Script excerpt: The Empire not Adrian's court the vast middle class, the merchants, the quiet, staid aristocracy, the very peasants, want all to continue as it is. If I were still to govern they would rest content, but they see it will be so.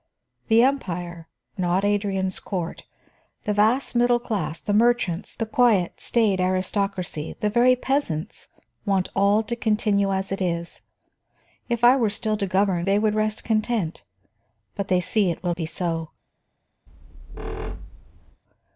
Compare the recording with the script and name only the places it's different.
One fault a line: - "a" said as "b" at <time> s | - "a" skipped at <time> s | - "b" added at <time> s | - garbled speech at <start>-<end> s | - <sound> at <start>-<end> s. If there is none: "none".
- squeak at 16.9-18.4 s